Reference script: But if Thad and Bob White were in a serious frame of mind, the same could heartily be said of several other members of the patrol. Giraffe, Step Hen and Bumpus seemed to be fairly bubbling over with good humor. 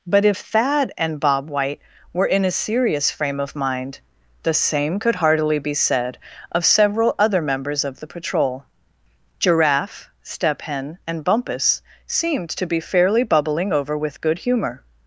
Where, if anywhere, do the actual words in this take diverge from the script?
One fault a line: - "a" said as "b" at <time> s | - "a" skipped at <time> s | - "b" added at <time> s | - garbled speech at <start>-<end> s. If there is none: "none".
none